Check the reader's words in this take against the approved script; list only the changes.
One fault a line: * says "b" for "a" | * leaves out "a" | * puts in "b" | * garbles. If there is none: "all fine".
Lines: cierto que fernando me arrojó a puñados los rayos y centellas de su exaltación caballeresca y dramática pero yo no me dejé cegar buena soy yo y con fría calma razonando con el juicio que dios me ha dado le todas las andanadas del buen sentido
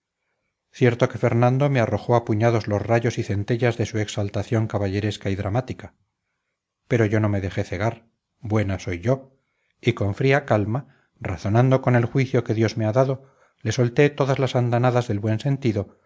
* puts in "solté"